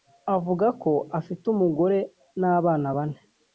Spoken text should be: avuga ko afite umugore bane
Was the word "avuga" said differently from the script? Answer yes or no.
no